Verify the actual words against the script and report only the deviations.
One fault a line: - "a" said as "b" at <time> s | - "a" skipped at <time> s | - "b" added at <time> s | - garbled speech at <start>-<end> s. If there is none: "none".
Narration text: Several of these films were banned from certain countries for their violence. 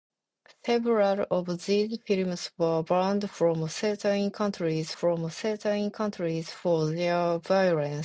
- "from certain countries" added at 4.9 s